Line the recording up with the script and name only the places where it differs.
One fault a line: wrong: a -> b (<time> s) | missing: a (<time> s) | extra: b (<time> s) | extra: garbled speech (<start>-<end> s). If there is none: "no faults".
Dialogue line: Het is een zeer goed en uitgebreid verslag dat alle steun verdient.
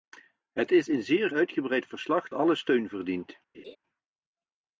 missing: goed en (1.3 s)
missing: dat (2.3 s)